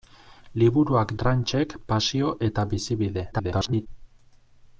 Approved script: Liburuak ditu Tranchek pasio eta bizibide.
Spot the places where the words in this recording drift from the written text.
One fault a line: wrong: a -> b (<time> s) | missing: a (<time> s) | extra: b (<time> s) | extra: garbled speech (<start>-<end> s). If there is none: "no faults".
missing: ditu (1.1 s)
extra: garbled speech (3.3-3.9 s)